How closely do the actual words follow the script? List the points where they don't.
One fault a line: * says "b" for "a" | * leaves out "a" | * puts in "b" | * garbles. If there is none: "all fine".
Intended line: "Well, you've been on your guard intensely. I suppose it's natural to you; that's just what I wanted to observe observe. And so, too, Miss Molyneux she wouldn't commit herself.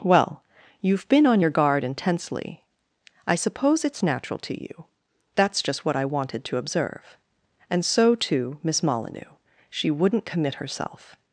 * leaves out "observe"